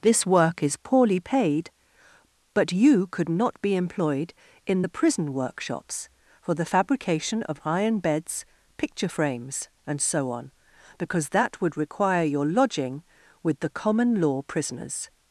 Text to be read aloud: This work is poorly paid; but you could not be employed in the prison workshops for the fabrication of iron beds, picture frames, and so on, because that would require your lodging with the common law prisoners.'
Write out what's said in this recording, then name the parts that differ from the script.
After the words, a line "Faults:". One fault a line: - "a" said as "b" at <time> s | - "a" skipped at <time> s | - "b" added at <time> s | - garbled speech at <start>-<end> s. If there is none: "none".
This work is poorly paid; but you could not be employed in the prison workshops for the fabrication of iron beds, picture frames, and so on, because that would require your lodging with the common law prisoners.'
Faults:
none